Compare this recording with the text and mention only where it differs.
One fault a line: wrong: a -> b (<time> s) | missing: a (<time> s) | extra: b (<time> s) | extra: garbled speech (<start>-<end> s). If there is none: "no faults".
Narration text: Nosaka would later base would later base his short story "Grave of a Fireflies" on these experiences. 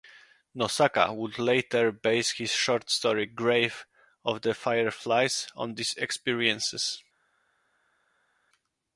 missing: would later base (2.3 s)
wrong: a -> the (4.4 s)